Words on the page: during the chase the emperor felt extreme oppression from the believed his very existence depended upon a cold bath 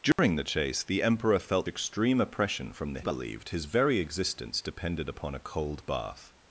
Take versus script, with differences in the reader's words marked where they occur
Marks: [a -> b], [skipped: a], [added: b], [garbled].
during the chase the emperor felt extreme oppression from the believed his very existence depended upon a cold bath